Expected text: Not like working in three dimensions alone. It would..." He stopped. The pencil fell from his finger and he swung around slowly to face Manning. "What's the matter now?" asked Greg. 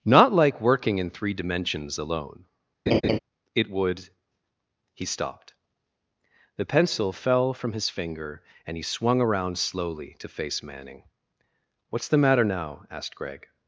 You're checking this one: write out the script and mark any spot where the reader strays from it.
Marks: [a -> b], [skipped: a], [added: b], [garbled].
Not like working in three dimensions alone. It would..." He stopped. The pencil fell from his finger and he swung around slowly to face Manning. "What's the matter now?" asked Greg.